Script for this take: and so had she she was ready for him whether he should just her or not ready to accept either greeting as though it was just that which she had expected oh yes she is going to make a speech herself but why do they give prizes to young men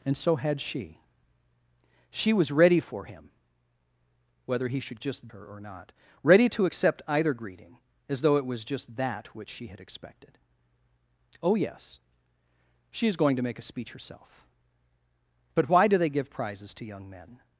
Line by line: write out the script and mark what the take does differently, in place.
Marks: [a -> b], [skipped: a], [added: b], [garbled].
and so had she she was ready for him whether he should just her or not ready to accept either greeting as though it was just that which she had expected oh yes she is going to make a speech herself but why do they give prizes to young men